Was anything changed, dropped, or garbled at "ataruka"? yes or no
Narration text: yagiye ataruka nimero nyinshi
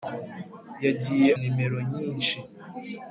yes